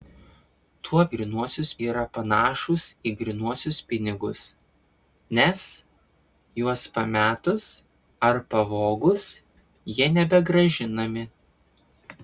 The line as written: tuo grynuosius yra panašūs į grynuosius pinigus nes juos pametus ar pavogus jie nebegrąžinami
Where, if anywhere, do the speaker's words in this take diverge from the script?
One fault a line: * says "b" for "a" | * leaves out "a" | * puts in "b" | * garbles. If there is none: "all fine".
all fine